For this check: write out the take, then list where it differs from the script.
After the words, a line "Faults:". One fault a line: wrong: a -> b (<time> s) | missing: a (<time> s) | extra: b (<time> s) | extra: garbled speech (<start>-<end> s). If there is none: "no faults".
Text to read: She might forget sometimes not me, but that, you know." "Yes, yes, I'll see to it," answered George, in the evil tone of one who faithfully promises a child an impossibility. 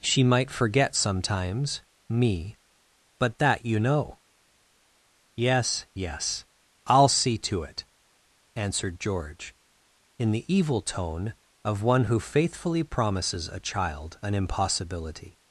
She might forget sometimes me, but that, you know." "Yes, yes, I'll see to it," answered George, in the evil tone of one who faithfully promises a child an impossibility.
Faults:
missing: not (1.8 s)